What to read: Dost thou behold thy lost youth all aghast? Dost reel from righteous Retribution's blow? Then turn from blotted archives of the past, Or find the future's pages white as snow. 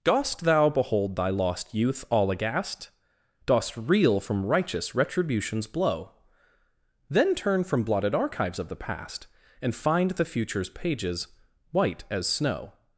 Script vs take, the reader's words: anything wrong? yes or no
yes